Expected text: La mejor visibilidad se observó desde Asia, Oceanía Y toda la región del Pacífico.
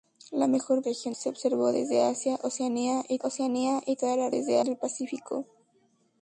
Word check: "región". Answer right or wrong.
wrong